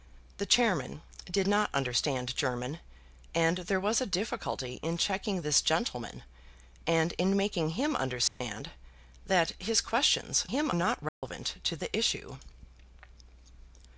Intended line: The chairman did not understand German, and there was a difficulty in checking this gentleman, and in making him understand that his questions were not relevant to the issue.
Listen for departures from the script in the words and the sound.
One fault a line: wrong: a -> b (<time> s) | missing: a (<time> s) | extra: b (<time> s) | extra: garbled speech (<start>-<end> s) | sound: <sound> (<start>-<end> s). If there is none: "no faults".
sound: dropout (8.3-8.4 s)
wrong: were -> him (10.5 s)
sound: dropout (11.1-11.2 s)